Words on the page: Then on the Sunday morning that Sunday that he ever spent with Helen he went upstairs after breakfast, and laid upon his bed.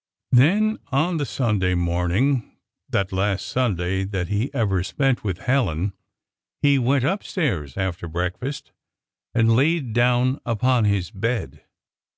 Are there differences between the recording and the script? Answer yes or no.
yes